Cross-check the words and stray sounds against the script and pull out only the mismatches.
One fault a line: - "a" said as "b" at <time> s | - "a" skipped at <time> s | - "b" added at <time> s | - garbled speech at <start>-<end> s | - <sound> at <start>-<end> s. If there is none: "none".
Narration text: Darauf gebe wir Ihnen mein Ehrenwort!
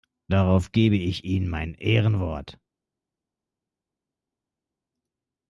- "wir" said as "ich" at 0.9 s